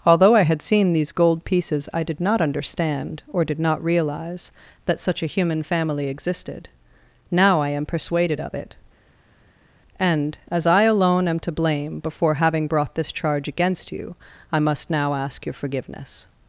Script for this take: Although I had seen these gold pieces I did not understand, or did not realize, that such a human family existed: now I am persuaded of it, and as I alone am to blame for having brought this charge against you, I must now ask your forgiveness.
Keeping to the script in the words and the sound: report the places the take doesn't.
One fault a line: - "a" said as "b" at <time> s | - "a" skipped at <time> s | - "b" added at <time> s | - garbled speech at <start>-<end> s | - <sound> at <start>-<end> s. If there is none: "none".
- "for" said as "before" at 12.0 s